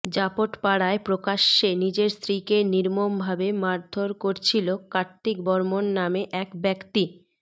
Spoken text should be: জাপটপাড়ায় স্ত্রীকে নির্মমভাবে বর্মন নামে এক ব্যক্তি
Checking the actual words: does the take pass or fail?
fail